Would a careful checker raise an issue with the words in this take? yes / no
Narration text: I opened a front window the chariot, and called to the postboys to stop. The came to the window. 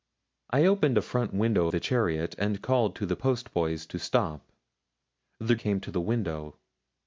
no